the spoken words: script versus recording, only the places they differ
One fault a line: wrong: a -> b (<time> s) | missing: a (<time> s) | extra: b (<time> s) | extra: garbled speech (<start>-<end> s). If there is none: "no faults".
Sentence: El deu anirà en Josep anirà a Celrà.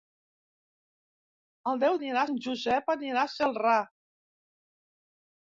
no faults